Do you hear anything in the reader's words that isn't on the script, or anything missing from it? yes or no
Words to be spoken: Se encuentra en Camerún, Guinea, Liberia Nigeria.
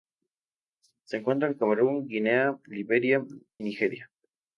no